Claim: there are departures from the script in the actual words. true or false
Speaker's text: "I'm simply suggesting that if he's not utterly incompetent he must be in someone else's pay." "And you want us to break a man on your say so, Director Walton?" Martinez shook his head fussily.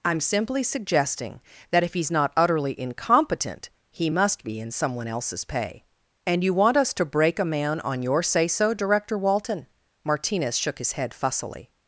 false